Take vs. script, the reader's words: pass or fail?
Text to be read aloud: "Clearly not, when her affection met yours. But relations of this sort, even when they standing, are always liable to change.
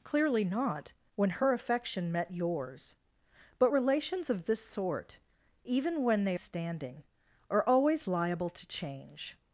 pass